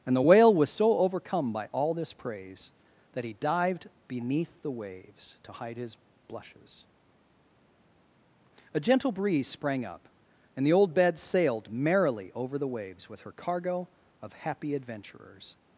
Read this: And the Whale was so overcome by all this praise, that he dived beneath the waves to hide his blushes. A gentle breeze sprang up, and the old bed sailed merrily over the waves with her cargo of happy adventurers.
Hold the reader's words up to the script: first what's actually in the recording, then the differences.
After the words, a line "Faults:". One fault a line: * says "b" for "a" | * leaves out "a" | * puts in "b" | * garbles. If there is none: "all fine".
And the Whale was so overcome by all this praise, that he dived beneath the waves to hide his blushes. A gentle breeze sprang up, and the old bed sailed merrily over the waves with her cargo of happy adventurers.
Faults:
all fine